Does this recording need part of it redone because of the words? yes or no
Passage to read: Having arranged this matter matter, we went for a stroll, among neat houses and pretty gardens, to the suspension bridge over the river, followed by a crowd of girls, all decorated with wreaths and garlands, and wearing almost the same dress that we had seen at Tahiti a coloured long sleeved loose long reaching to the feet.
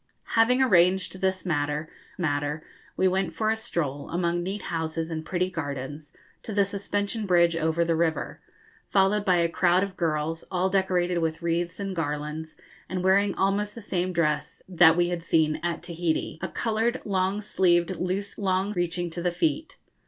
no